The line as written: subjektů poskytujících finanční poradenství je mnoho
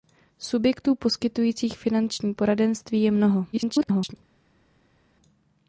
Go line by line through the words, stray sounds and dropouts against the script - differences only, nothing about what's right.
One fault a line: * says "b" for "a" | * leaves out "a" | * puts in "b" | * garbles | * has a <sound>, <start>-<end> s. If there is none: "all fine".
* garbles